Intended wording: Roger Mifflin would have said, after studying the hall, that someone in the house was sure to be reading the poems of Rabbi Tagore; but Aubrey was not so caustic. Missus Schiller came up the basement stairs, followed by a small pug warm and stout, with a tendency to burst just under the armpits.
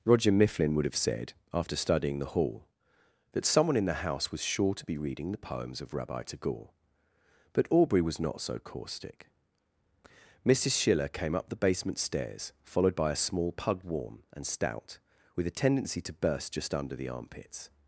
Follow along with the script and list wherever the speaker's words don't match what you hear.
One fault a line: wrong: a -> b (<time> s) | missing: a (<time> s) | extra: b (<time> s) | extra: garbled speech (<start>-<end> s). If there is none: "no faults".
no faults